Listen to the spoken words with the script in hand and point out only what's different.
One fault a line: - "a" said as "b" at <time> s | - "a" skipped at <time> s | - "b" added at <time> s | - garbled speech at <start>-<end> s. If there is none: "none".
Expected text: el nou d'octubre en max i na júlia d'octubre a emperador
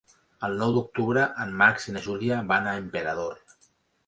- "d'octubre" said as "van" at 2.5 s